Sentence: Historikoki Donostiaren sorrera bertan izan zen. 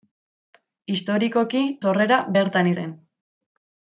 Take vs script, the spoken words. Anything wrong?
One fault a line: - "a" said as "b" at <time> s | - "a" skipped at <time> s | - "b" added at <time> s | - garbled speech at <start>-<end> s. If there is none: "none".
- "Donostiaren" skipped at 1.6 s
- "izan" skipped at 2.7 s